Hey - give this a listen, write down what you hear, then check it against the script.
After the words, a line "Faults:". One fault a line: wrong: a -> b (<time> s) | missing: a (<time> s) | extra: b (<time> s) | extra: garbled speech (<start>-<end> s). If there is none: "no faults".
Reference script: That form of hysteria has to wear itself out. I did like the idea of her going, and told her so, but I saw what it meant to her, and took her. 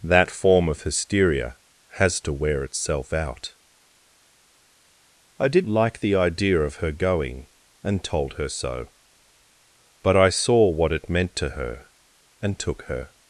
That form of hysteria has to wear itself out. I did like the idea of her going, and told her so, but I saw what it meant to her, and took her.
Faults:
no faults